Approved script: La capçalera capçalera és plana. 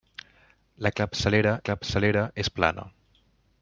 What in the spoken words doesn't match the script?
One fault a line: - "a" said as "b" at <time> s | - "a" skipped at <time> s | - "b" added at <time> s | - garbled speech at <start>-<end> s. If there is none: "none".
none